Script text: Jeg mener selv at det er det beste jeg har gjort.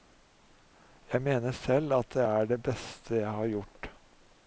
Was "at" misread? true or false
false